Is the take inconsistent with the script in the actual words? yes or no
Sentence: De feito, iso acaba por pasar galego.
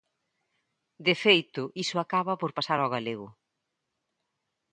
yes